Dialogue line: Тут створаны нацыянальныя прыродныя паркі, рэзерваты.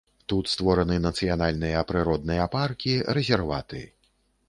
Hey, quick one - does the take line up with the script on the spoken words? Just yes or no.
yes